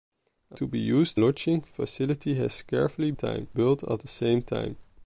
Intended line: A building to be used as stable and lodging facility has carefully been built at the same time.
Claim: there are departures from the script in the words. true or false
true